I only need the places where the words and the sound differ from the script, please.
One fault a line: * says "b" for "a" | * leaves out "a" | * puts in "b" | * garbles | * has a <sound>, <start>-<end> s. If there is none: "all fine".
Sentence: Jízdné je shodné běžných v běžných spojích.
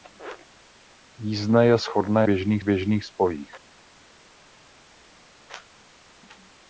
all fine